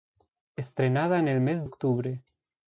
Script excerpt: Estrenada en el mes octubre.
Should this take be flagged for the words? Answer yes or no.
no